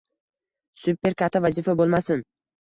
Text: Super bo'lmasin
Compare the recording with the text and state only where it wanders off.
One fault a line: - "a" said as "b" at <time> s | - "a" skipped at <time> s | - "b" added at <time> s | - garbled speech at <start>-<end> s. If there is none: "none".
- "katta vazifa" added at 1.2 s